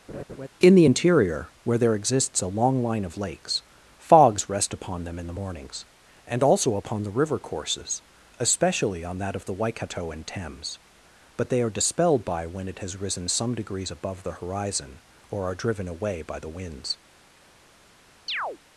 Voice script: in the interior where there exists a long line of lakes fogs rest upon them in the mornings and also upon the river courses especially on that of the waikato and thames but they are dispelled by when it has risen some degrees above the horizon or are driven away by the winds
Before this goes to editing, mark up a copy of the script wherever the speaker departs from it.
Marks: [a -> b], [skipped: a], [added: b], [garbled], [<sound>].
[laugh] in the interior where there exists a long line of lakes fogs rest upon them in the mornings and also upon the river courses especially on that of the waikato and thames but they are dispelled by when it has risen some degrees above the horizon or are driven away by the winds [chirp]